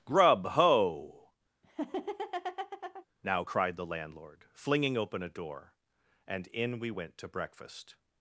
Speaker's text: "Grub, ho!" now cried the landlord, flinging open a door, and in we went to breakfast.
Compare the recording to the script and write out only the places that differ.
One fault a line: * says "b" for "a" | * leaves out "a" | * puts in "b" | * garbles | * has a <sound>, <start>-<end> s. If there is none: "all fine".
* has a laugh, 1.6-3.0 s